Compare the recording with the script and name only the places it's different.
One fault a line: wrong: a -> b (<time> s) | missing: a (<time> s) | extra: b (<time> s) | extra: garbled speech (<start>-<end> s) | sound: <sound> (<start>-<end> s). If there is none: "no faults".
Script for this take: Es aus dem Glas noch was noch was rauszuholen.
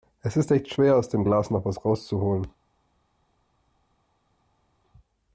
extra: ist echt schwer (0.3 s)
missing: noch was (1.8 s)